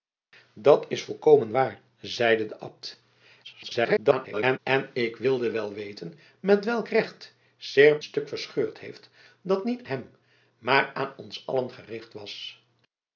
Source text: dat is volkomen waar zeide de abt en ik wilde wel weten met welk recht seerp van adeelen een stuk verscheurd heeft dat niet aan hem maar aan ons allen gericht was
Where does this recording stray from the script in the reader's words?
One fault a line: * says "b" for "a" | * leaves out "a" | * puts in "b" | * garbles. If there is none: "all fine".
* garbles
* leaves out "van adeelen een"
* leaves out "aan"